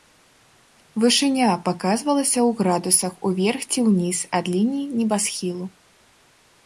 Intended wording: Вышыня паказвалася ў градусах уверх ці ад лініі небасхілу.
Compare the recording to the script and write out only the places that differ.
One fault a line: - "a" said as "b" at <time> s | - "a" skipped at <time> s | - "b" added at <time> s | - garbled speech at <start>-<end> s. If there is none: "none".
- "ўніз" added at 3.9 s